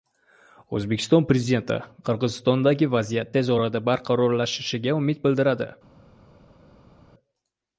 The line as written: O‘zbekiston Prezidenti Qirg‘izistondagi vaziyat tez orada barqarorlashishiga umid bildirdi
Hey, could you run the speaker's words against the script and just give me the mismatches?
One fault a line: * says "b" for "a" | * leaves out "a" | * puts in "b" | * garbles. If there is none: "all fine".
all fine